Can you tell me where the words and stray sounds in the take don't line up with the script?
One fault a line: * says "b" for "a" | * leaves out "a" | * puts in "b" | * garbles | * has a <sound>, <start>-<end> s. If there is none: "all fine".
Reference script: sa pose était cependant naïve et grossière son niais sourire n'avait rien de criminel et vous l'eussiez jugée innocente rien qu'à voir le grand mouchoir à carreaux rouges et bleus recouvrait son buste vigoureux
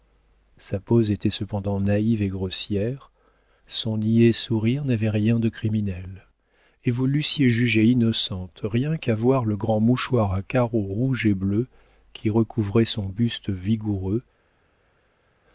* puts in "qui"